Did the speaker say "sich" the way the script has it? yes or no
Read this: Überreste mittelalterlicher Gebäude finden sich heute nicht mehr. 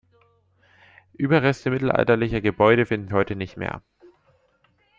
no